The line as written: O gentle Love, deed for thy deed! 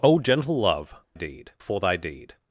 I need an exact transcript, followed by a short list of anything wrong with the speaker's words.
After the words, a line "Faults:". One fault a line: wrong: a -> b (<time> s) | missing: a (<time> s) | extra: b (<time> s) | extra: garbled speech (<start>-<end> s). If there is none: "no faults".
O gentle Love, deed for thy deed!
Faults:
no faults